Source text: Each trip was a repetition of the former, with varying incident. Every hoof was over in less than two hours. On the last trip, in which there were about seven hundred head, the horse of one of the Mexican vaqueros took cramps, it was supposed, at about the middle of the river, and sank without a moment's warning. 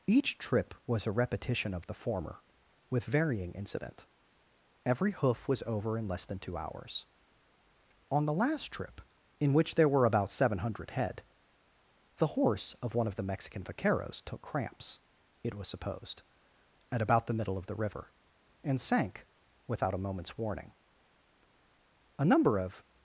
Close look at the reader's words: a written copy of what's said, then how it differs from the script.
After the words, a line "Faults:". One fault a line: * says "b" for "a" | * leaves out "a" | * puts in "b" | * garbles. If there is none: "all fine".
Each trip was a repetition of the former, with varying incident. Every hoof was over in less than two hours. On the last trip, in which there were about seven hundred head, the horse of one of the Mexican vaqueros took cramps, it was supposed, at about the middle of the river, and sank without a moment's warning. A number of
Faults:
* puts in "A number of"